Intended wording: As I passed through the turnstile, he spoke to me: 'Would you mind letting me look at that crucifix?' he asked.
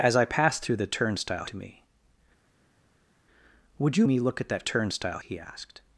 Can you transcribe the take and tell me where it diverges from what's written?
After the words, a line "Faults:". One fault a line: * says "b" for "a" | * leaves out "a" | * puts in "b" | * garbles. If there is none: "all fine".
As I passed through the turnstile, to me: 'Would you me look at that turnstile?' he asked.
Faults:
* leaves out "he spoke"
* leaves out "mind letting"
* says "turnstile" for "crucifix"